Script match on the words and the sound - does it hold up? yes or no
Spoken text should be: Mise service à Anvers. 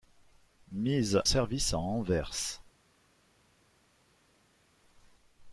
yes